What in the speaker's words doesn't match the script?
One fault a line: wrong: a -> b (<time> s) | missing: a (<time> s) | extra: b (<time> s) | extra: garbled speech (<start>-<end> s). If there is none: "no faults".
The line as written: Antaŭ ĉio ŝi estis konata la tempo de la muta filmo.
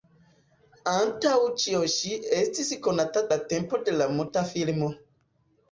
no faults